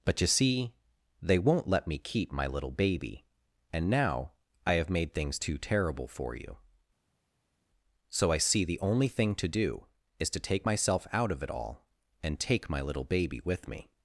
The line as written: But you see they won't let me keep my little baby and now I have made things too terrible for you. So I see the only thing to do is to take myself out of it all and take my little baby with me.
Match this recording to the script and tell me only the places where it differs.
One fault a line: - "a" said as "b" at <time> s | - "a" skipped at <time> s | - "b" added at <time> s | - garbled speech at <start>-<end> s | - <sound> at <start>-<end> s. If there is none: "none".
none